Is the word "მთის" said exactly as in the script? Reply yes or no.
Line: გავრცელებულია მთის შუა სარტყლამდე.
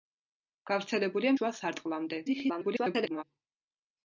no